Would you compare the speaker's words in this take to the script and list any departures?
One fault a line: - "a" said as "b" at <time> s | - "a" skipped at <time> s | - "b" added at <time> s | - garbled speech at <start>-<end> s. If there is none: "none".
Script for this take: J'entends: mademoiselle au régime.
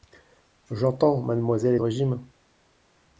none